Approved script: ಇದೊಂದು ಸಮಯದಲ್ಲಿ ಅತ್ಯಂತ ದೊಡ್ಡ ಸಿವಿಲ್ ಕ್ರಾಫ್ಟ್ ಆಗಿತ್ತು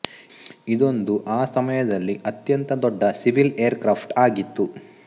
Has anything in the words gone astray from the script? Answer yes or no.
yes